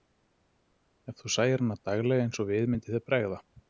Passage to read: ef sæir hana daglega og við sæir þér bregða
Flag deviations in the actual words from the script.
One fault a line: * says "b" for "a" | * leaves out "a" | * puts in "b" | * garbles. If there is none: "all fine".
* puts in "þú"
* puts in "eins"
* says "myndi" for "sæir"